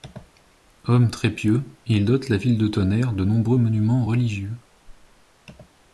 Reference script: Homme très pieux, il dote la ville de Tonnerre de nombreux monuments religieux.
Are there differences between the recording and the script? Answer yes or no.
no